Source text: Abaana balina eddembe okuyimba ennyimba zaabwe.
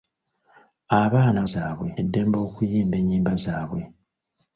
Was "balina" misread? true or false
true